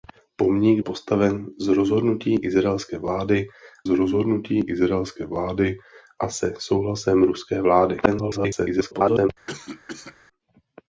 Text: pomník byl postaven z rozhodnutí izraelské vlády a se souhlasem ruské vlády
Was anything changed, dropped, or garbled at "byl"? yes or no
yes